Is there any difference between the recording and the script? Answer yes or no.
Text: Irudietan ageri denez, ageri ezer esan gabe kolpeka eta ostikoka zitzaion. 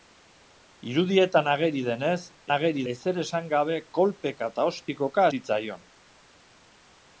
no